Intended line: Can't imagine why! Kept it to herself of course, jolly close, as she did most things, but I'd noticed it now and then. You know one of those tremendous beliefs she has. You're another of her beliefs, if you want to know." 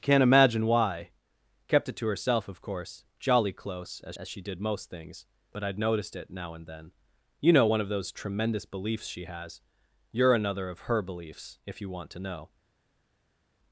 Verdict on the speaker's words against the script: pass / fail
fail